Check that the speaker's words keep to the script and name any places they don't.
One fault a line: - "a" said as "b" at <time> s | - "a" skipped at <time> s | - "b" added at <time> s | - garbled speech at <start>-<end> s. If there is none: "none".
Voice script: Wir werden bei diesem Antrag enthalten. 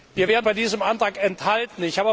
none